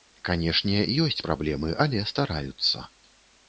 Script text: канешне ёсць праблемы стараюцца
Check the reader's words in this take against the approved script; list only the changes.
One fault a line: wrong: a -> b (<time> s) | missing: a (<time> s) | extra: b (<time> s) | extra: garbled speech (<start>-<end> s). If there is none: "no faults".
extra: але (1.8 s)